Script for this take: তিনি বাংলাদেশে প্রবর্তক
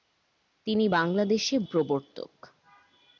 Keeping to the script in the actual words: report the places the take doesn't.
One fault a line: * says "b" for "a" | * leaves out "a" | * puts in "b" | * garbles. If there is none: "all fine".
all fine